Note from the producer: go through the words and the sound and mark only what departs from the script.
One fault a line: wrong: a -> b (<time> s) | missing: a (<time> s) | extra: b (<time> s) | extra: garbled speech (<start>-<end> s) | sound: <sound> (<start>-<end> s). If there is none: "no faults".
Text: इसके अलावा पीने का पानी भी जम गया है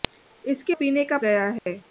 missing: अलावा (0.8 s)
missing: पानी भी जम (1.2 s)
sound: dropout (1.6-1.7 s)